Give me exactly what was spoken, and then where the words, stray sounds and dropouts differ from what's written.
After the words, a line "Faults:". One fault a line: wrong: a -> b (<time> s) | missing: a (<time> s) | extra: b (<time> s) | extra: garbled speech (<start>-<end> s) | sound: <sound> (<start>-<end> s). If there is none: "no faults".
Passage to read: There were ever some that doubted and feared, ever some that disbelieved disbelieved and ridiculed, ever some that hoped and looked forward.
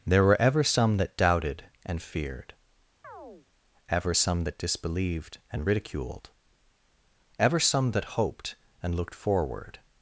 There were ever some that doubted and feared, ever some that disbelieved and ridiculed, ever some that hoped and looked forward.
Faults:
sound: chirp (3.0-3.5 s)
missing: disbelieved (5.4 s)